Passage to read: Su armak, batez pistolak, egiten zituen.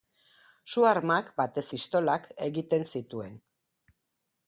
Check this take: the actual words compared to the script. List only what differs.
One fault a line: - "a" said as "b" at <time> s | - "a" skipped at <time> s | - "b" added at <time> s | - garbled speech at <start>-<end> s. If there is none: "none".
none